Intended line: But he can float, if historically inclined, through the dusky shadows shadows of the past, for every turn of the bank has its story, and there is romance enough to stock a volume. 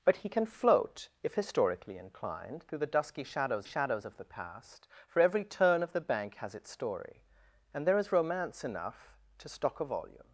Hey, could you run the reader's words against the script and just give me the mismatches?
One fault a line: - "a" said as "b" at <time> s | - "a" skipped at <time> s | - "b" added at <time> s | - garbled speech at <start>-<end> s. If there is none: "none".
none